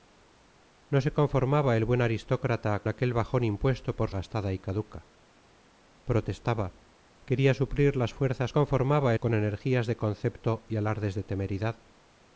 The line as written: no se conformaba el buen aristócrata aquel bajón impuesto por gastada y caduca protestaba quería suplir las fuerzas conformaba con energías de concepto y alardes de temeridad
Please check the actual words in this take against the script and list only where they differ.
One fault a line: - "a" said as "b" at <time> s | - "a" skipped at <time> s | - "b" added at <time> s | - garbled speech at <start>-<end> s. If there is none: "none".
none